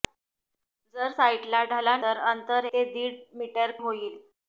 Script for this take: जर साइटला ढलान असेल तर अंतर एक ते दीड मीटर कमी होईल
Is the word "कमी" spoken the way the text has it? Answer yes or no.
no